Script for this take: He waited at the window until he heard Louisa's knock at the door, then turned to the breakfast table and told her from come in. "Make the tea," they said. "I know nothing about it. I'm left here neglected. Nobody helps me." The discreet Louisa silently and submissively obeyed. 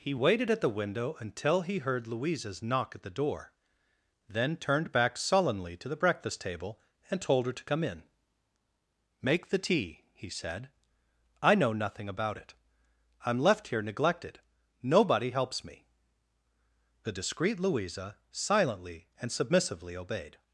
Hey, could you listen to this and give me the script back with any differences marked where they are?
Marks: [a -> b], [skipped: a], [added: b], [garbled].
He waited at the window until he heard Louisa's knock at the door, then turned [added: back sullenly] to the breakfast table and told her [from -> to] come in. "Make the tea," [they -> he] said. "I know nothing about it. I'm left here neglected. Nobody helps me." The discreet Louisa silently and submissively obeyed.